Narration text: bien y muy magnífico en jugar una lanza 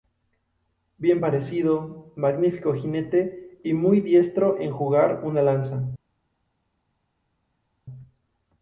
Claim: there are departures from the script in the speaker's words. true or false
true